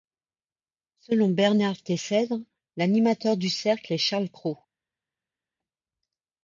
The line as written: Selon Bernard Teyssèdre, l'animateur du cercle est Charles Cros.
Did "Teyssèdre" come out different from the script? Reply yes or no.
no